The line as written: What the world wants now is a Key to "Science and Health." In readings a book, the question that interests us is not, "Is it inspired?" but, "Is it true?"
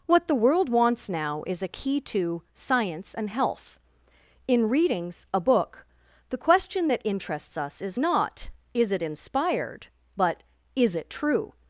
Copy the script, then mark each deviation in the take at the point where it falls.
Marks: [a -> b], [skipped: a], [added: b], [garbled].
What the world wants now is a Key to "Science and Health." In readings a book, the question that interests us is not, "Is it inspired?" but, "Is it true?"